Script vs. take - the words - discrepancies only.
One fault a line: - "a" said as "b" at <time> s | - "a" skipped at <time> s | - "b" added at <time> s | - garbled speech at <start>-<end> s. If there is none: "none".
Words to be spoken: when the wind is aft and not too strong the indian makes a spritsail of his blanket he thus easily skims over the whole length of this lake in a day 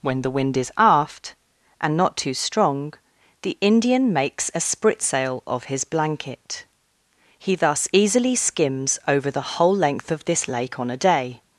- "in" said as "on" at 10.8 s